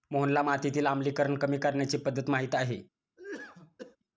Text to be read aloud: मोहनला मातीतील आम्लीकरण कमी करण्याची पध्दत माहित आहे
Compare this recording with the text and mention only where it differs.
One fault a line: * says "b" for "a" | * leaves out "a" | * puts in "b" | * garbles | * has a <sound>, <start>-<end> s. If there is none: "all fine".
* has a cough, 3.2-4.0 s